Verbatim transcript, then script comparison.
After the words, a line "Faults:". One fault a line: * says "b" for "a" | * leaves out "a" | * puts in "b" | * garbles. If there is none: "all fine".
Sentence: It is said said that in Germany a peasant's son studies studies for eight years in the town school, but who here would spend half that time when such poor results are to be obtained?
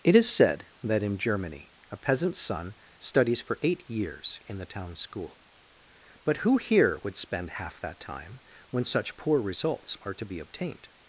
It is said that in Germany a peasant's son studies for eight years in the town school, but who here would spend half that time when such poor results are to be obtained?
Faults:
* leaves out "said"
* leaves out "studies"